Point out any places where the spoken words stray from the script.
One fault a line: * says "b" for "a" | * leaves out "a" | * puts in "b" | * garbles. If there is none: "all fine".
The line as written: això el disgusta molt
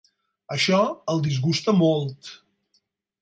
all fine